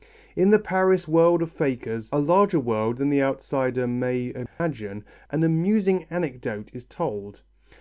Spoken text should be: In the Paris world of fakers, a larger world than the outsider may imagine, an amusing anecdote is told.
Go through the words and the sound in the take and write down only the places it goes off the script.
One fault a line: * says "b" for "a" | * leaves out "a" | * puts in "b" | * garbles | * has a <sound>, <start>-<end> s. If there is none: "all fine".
* has a dropout, 4.5-4.6 s